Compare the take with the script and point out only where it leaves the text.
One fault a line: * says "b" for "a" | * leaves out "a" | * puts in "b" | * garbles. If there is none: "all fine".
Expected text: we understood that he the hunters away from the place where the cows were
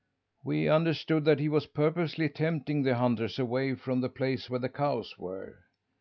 * puts in "was purposely tempting"